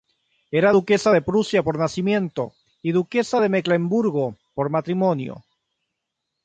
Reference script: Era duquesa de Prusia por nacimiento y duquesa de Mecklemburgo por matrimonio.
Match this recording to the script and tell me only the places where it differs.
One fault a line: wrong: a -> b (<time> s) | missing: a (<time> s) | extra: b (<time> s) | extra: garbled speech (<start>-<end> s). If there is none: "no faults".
no faults